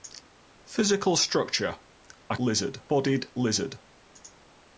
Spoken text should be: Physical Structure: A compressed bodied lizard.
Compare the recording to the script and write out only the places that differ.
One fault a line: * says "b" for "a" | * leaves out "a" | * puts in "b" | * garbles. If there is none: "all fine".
* says "lizard" for "compressed"